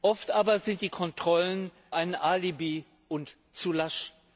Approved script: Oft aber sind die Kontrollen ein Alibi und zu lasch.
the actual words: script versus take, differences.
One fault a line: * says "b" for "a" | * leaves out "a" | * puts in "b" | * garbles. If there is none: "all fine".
all fine